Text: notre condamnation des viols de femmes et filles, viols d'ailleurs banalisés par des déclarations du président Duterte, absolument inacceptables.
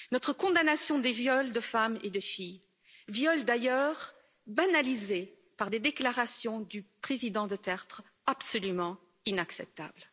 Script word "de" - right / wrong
right